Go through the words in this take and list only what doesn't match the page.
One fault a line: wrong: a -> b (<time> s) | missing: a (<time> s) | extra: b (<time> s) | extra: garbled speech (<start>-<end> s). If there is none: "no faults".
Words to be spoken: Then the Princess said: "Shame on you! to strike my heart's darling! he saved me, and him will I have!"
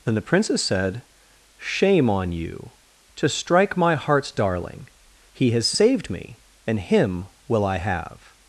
extra: has (5.5 s)